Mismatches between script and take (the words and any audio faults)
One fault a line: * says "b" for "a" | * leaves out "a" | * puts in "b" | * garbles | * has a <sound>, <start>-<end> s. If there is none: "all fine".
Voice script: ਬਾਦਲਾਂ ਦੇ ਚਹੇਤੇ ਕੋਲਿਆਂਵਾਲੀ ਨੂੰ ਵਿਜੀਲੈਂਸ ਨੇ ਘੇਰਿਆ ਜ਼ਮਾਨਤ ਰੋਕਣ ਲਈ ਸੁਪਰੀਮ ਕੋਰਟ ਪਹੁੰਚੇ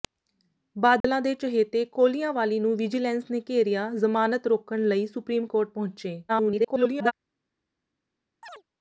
* has a dropout, 1.0-1.0 s
* garbles
* has a chirp, 8.4-8.6 s